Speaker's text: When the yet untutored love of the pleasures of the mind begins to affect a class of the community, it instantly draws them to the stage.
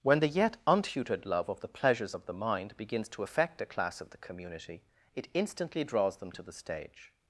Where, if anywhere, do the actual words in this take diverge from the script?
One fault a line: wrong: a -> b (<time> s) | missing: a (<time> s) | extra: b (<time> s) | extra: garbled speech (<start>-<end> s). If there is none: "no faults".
no faults